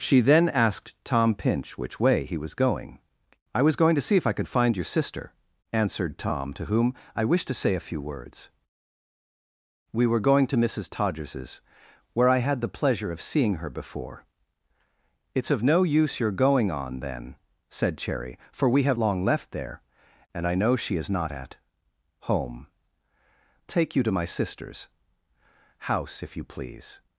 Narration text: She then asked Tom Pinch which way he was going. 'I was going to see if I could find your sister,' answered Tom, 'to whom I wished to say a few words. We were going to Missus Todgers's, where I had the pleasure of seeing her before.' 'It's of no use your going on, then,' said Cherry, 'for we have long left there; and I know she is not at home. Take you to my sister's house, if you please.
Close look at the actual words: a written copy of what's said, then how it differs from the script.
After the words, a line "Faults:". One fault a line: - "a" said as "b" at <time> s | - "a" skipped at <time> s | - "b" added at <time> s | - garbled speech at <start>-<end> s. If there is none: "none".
She then asked Tom Pinch which way he was going. 'I was going to see if I could find your sister,' answered Tom, 'to whom I wished to say a few words. We were going to Missus Todgers's, where I had the pleasure of seeing her before.' 'It's of no use your going on, then,' said Cherry, 'for we have long left there; and I know she is not at home. Take you to my sister's house, if you please.
Faults:
none